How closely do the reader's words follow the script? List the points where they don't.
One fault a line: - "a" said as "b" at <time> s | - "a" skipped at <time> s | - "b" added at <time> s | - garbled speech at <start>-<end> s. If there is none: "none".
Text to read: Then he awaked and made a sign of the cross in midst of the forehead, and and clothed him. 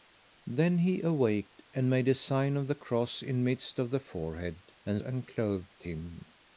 none